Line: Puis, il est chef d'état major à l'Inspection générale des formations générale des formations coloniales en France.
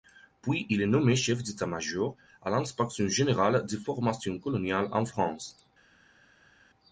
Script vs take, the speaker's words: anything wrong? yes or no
yes